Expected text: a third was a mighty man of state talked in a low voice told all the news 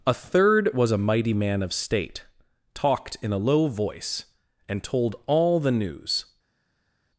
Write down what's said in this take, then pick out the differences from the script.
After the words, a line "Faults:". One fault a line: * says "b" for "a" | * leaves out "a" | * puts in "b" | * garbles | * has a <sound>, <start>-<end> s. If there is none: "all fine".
a third was a mighty man of state talked in a low voice and told all the news
Faults:
* puts in "and"